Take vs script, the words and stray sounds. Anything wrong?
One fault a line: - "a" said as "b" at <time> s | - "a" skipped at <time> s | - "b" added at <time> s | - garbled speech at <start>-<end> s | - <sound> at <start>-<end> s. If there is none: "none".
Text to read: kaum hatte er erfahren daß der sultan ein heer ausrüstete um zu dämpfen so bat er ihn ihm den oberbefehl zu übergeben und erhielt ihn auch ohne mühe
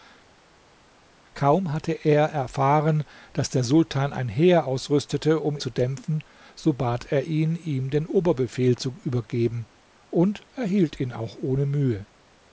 none